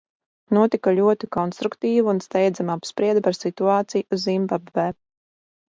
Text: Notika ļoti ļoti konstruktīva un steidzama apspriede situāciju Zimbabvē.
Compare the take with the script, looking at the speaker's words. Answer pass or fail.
fail